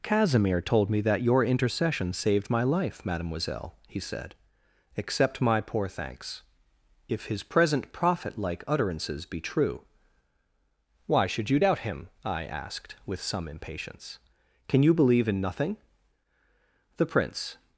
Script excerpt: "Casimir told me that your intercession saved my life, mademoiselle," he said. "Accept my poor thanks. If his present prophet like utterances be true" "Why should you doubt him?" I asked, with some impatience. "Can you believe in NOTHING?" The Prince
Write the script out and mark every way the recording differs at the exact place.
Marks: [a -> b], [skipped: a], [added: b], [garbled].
"Casimir told me that your intercession saved my life, mademoiselle," he said. "Accept my poor thanks. If his present prophet like utterances be true" "Why should you doubt him?" I asked, with some impatience. "Can you believe in NOTHING?" The Prince